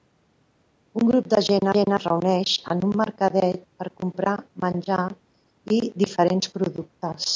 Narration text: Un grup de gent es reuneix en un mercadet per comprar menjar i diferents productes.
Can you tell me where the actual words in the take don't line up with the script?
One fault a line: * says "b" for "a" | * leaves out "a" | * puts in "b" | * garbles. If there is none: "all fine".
* puts in "gent"